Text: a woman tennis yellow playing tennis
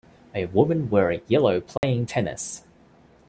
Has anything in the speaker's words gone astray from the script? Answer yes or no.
yes